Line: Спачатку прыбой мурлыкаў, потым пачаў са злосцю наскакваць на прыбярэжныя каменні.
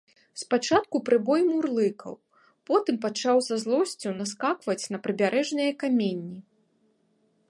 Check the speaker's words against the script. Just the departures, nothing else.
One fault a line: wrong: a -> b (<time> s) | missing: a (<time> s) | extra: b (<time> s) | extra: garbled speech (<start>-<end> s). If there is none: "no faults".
no faults